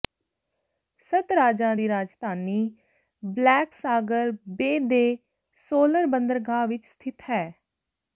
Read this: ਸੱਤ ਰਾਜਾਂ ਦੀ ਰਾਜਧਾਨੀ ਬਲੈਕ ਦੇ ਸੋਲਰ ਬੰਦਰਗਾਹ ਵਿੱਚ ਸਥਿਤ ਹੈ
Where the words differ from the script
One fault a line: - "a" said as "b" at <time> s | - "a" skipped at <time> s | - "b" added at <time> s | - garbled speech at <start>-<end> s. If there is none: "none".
- "ਸਾਗਰ ਬੇ" added at 3.7 s